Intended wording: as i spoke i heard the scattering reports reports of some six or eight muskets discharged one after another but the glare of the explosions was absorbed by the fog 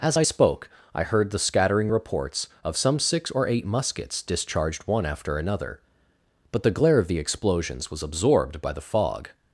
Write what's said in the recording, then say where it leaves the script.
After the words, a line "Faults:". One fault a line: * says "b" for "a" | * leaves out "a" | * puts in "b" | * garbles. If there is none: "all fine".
as i spoke i heard the scattering reports of some six or eight muskets discharged one after another but the glare of the explosions was absorbed by the fog
Faults:
* leaves out "reports"